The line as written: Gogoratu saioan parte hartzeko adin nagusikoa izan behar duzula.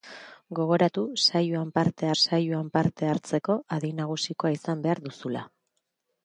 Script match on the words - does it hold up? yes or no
no